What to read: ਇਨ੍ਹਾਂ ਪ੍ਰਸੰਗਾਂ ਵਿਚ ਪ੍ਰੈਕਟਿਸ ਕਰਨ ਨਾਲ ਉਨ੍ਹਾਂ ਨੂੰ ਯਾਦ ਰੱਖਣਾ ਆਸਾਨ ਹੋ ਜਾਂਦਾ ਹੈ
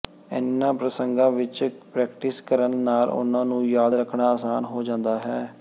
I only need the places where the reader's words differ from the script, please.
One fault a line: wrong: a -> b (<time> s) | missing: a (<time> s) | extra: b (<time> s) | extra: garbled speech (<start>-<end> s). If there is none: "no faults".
no faults